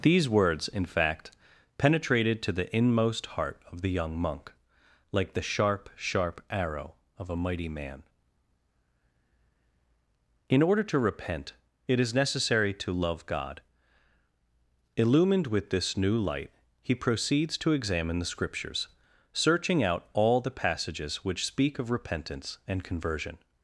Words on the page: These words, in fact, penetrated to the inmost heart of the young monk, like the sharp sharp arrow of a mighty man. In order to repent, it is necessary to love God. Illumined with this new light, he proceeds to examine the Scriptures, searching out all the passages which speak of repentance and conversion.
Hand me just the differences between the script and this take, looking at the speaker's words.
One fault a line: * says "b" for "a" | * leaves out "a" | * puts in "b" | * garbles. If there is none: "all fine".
all fine